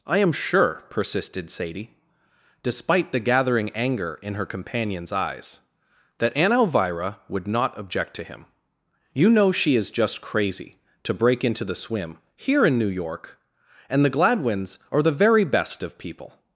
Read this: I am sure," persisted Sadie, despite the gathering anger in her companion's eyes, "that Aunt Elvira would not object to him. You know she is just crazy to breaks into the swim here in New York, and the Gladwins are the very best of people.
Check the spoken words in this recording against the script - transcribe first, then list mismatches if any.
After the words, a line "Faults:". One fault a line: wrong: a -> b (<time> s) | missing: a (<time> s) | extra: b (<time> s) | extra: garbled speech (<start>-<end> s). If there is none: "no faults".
I am sure," persisted Sadie, despite the gathering anger in her companion's eyes, "that Aunt Elvira would not object to him. You know she is just crazy to break into the swim here in New York, and the Gladwins are the very best of people.
Faults:
wrong: breaks -> break (11.1 s)